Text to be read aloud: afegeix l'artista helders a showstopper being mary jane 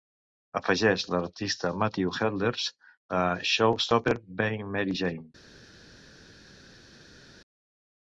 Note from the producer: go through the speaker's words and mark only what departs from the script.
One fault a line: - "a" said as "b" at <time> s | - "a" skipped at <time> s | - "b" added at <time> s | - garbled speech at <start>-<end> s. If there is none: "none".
- "matthew" added at 1.8 s